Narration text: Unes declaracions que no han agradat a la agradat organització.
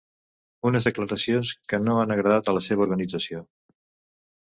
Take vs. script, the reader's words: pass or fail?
fail